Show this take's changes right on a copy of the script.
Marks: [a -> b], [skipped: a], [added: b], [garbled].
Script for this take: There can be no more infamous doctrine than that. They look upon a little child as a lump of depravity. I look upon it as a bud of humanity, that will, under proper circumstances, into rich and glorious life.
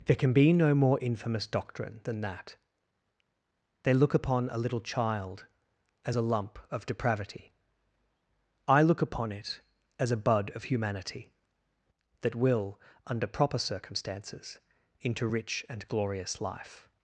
There can be no more infamous doctrine than that. They look upon a little child as a lump of depravity. I look upon it as a bud of humanity, that will, under proper circumstances, into rich and glorious life.